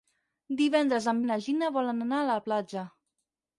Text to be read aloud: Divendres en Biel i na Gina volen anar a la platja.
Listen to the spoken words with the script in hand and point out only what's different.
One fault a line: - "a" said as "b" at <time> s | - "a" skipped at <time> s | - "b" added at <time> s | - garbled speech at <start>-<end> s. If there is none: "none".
- "Biel" skipped at 1.2 s